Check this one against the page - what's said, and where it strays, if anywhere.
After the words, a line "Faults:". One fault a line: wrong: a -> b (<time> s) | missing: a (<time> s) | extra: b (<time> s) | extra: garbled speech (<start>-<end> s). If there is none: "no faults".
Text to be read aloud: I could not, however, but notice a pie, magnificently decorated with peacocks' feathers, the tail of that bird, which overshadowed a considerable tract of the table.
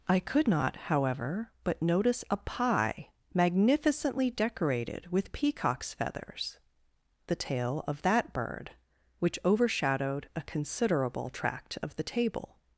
I could not, however, but notice a pie, magnificently decorated with peacocks' feathers, the tail of that bird, which overshadowed a considerable tract of the table.
Faults:
no faults